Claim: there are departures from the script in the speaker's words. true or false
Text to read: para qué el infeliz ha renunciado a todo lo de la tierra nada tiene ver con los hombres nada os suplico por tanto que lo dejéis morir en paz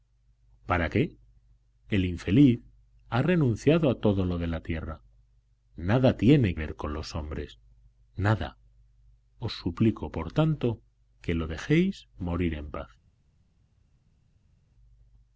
false